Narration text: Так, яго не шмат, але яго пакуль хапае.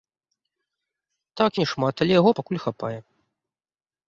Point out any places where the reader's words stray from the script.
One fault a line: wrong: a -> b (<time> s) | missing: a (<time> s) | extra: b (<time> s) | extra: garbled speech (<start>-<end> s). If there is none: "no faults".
missing: яго (1.5 s)